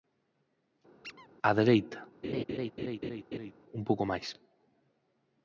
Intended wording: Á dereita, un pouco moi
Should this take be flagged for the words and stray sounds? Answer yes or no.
yes